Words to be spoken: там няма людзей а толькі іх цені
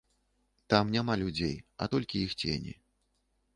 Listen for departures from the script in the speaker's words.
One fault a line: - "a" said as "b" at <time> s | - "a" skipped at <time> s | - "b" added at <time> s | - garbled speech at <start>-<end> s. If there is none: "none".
none